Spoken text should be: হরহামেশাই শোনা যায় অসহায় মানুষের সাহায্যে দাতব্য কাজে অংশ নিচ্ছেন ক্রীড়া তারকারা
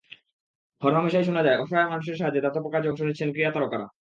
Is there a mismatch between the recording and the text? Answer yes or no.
no